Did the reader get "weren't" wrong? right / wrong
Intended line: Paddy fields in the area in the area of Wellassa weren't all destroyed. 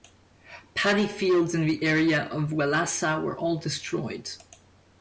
wrong